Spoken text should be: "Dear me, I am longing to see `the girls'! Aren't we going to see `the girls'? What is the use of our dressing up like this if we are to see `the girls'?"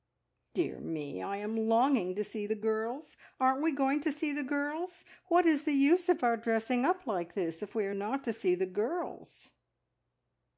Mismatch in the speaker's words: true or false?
true